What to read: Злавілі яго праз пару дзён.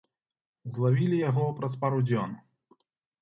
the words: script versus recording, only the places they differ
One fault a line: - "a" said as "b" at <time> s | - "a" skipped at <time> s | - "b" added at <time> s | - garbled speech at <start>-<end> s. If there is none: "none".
none